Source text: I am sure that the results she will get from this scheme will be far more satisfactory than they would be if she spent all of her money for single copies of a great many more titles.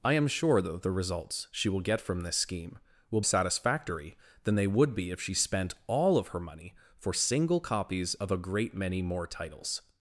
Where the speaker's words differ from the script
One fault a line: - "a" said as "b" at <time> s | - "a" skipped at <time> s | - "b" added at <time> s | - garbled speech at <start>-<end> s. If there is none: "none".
- "be far more" skipped at 3.2 s